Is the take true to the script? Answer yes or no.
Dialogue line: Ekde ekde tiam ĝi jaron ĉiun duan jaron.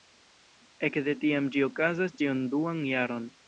no